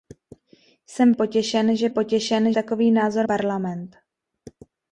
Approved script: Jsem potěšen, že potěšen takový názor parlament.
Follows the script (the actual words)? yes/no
yes